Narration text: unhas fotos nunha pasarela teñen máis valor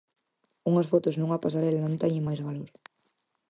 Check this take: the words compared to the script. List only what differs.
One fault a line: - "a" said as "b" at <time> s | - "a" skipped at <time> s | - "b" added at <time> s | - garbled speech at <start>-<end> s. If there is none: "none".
- "non" added at 1.8 s